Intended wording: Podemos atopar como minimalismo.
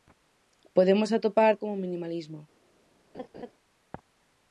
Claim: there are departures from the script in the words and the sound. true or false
true